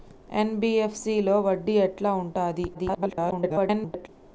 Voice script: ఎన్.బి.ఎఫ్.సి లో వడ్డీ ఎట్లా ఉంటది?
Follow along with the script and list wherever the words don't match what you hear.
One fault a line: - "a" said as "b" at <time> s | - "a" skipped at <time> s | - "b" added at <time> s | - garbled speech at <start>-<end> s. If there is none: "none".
- garbled speech at 2.7-4.1 s